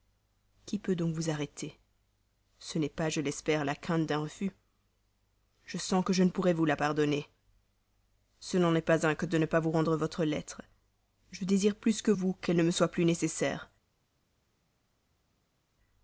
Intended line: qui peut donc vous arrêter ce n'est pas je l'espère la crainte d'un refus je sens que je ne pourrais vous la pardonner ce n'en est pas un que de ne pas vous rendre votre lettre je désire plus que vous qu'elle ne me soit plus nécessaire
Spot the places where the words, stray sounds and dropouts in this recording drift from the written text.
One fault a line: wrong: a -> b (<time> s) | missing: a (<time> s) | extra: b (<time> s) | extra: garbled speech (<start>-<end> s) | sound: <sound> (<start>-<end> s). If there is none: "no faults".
no faults